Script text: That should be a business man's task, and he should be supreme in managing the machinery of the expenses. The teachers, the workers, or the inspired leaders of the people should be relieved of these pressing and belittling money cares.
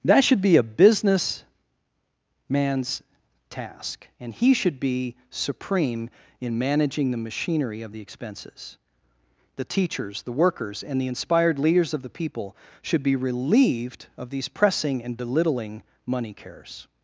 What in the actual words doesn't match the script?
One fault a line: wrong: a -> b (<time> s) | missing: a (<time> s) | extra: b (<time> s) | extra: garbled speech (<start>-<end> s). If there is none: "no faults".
wrong: or -> and (10.8 s)